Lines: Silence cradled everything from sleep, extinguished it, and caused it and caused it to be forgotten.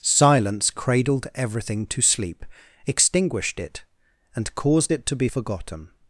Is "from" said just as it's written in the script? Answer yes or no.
no